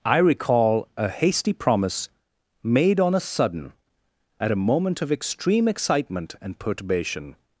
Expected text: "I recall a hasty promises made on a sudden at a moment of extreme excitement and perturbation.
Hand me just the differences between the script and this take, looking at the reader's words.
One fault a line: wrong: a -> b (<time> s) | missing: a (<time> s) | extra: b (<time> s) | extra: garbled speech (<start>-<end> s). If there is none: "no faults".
wrong: promises -> promise (1.5 s)